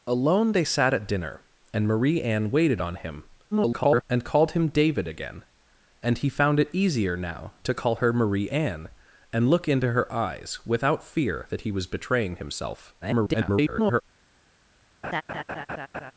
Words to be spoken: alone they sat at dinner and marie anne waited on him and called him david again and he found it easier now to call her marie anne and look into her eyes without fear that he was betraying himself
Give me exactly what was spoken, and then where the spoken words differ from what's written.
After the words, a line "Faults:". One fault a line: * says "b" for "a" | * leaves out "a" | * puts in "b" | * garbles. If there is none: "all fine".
alone they sat at dinner and marie anne waited on him [garbled] and called him david again and he found it easier now to call her marie anne and look into her eyes without fear that he was betraying himself [garbled]
Faults:
* garbles
* garbles